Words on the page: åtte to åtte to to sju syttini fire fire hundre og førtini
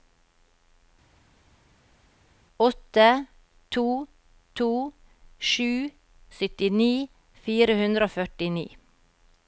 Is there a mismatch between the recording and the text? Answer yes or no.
yes